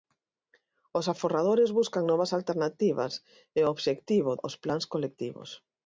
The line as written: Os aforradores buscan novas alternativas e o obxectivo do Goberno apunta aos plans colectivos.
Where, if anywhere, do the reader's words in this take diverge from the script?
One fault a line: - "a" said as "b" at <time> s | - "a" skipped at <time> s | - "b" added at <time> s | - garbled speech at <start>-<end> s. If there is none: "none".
- "do Goberno apunta" skipped at 4.3 s